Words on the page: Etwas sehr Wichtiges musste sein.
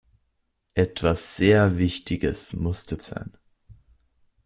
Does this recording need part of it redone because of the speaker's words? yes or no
no